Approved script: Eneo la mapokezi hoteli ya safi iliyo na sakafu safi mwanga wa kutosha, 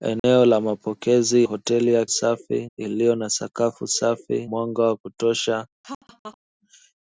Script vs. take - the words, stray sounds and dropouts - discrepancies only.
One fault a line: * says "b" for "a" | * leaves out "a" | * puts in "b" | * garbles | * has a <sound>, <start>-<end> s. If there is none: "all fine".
* has a dropout, 0.2-0.2 s
* has a laugh, 5.8-6.4 s